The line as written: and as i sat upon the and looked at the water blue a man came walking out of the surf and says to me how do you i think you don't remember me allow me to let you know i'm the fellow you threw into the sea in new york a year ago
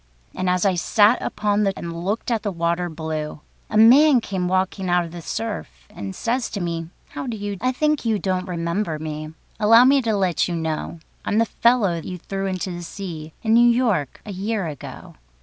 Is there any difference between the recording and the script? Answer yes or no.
no